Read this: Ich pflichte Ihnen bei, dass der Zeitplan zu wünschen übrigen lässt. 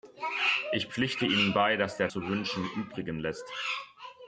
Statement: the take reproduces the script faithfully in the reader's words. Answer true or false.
false